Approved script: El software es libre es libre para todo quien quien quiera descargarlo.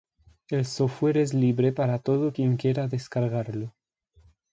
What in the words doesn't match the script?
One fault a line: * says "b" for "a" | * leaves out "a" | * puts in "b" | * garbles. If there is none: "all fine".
* leaves out "es libre"
* leaves out "quien"